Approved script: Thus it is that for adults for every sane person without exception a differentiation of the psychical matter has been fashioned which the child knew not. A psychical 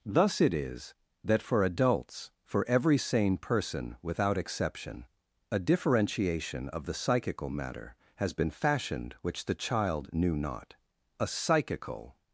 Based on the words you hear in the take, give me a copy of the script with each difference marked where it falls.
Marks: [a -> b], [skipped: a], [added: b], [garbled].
Thus it is that for adults for every sane person without exception a differentiation of the psychical matter has been fashioned which the child knew not. A psychical